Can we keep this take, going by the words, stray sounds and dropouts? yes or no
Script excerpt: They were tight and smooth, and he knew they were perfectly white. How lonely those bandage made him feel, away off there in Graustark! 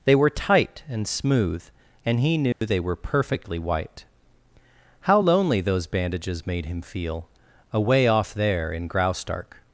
no